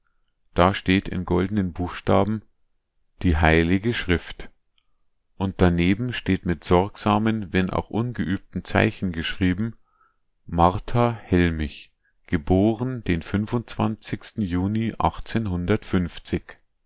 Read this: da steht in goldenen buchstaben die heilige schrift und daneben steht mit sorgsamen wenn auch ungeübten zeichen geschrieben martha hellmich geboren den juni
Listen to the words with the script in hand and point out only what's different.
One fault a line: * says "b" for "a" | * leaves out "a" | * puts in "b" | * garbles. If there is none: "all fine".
all fine